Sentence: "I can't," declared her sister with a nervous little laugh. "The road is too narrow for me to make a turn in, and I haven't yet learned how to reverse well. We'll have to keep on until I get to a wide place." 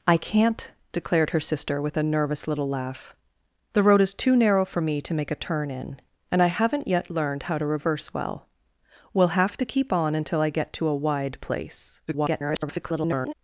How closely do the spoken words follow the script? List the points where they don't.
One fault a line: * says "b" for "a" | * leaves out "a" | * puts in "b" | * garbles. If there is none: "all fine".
* garbles